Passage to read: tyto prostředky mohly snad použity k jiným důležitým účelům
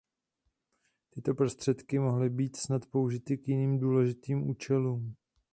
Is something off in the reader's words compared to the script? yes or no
yes